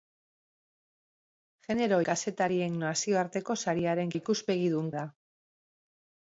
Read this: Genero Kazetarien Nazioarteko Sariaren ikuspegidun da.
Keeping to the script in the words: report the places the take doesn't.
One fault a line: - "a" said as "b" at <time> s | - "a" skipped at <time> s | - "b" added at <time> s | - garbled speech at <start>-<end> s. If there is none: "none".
none